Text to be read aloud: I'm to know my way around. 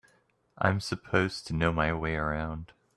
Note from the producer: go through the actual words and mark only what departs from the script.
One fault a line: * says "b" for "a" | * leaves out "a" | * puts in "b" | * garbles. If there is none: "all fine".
* puts in "supposed"